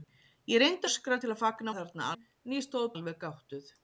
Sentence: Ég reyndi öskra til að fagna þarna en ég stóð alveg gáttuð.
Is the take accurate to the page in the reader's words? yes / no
yes